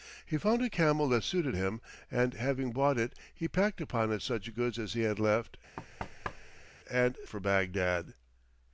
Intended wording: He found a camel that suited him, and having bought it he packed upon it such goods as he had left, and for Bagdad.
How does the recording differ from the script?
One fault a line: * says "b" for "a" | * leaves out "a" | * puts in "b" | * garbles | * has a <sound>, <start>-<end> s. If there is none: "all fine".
* has a thud, 5.8-6.7 s